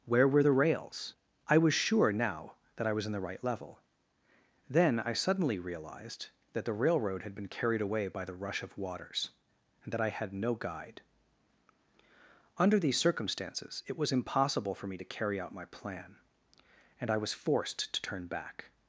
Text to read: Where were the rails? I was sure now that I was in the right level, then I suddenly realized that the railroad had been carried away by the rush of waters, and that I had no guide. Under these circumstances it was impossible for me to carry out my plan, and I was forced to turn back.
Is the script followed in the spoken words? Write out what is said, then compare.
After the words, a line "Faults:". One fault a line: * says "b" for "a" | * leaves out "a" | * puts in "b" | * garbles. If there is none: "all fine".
Where were the rails? I was sure now that I was in the right level, then I suddenly realized that the railroad had been carried away by the rush of waters, and that I had no guide. Under these circumstances it was impossible for me to carry out my plan, and I was forced to turn back.
Faults:
all fine